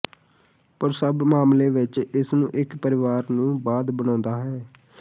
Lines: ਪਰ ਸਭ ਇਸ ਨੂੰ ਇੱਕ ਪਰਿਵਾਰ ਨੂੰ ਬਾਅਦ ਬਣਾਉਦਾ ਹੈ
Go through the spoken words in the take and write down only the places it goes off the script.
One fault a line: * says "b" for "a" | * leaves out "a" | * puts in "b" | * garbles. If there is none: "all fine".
* puts in "ਮਾਮਲੇ ਵਿੱਚ"